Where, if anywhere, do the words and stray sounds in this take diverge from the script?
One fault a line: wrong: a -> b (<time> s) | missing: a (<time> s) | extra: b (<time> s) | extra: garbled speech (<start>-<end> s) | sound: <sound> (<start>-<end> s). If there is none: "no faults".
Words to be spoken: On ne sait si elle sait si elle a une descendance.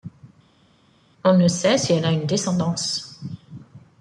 missing: sait si elle (2.0 s)